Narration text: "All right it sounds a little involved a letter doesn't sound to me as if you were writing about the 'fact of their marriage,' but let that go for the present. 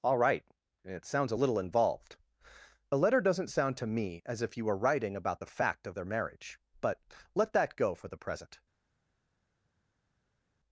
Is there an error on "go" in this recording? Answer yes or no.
no